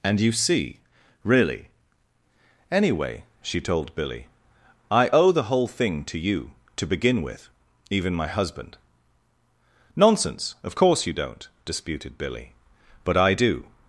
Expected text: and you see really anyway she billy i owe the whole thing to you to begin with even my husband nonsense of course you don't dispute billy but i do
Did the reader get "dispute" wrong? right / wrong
wrong